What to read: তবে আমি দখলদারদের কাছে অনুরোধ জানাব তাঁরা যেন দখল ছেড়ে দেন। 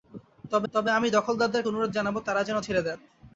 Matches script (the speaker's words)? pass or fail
fail